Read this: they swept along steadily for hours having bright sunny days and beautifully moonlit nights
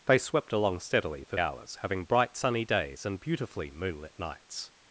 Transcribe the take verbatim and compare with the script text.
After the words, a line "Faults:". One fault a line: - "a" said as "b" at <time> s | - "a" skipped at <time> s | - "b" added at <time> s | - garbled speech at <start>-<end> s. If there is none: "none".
they swept along steadily for hours having bright sunny days and beautifully moonlit nights
Faults:
none